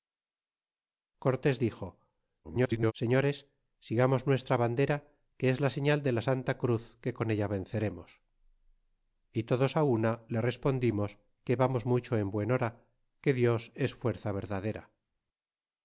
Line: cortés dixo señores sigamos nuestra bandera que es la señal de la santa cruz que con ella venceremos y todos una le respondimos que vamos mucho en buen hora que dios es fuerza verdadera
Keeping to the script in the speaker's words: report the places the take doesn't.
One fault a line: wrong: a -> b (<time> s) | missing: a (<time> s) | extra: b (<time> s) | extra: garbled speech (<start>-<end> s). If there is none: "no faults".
extra: garbled speech (2.4-2.9 s)